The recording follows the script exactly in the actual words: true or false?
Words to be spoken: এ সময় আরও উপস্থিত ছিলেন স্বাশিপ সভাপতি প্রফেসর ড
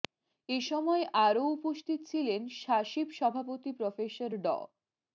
true